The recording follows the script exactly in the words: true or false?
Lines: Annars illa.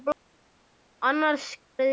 true